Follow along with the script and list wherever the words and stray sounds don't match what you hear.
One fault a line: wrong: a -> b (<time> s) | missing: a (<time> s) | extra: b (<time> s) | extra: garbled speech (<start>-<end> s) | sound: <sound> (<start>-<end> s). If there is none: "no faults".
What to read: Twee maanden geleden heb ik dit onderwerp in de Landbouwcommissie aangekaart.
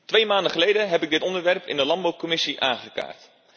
no faults